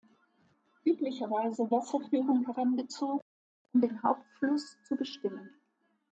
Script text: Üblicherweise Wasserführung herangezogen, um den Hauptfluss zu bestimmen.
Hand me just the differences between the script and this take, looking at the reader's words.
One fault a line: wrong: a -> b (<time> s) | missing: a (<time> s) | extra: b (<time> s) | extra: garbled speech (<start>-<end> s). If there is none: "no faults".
no faults